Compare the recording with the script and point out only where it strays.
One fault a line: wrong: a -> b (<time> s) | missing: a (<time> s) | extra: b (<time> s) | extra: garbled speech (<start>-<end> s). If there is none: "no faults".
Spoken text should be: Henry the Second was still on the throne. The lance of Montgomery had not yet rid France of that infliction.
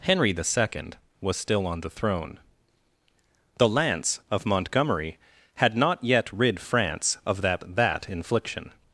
extra: that (7.8 s)